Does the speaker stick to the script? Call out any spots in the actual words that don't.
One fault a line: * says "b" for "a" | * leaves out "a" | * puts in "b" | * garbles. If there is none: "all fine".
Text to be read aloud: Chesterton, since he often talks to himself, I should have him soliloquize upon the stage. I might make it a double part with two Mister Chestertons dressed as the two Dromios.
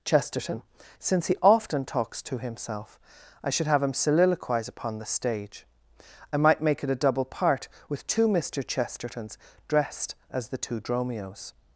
all fine